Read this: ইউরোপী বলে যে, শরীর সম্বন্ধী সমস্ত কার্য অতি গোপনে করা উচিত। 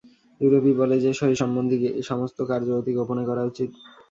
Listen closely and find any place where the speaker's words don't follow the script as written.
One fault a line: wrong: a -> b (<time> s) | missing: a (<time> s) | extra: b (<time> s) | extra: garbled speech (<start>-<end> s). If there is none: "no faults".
no faults